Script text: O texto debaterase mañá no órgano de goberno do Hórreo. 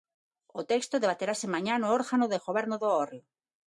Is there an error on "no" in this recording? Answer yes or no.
no